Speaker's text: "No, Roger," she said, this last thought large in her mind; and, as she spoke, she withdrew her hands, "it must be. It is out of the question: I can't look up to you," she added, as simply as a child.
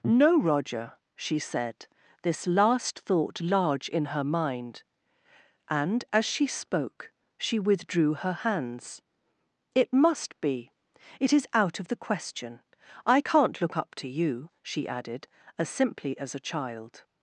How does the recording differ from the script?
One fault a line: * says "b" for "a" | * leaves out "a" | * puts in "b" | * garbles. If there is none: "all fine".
all fine